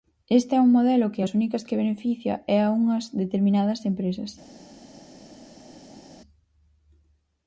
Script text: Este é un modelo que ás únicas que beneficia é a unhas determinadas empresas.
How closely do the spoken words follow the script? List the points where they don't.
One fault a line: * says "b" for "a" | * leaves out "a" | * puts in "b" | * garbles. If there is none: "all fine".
all fine